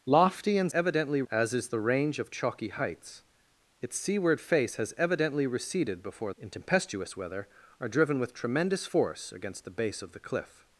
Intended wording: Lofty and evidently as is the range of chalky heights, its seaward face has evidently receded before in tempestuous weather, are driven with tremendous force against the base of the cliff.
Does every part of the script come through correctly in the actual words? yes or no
yes